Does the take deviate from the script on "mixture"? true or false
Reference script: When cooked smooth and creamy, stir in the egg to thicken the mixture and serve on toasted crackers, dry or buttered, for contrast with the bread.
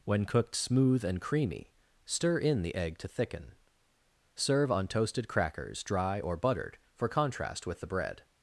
true